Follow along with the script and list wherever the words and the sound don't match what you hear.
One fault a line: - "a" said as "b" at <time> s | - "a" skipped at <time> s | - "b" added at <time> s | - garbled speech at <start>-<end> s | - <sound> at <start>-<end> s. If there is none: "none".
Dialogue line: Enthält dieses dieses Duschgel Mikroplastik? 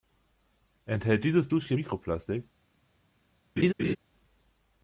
- "dieses" skipped at 1.5 s
- laugh at 3.6-4.0 s